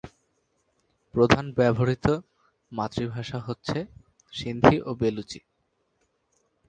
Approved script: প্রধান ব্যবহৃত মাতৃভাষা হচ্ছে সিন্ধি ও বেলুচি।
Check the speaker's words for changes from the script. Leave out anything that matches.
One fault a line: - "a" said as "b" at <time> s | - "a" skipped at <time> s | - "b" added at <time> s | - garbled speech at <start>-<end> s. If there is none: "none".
none